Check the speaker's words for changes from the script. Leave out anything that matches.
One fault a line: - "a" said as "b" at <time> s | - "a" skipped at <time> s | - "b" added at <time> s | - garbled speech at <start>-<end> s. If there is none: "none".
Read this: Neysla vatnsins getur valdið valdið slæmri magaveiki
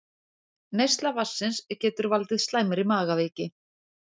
- "valdið" skipped at 2.4 s